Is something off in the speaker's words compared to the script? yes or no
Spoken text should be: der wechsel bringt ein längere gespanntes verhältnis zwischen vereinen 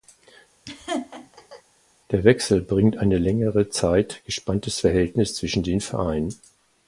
yes